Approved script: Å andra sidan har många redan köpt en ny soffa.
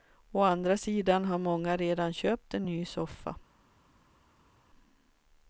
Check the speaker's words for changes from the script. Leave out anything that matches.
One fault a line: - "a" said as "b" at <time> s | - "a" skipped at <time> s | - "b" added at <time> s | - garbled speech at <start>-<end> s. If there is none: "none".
none